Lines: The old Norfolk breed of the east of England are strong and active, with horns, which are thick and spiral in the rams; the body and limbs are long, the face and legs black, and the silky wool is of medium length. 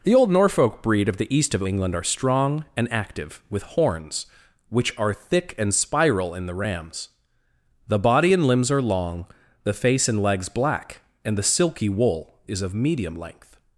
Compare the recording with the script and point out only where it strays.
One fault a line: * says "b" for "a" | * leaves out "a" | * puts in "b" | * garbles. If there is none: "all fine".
all fine